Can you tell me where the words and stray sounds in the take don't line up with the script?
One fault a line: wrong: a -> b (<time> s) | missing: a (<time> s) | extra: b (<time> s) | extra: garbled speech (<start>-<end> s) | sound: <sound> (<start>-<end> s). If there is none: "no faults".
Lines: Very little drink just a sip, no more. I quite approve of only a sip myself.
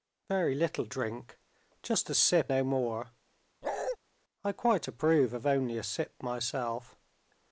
sound: bark (3.6-4.0 s)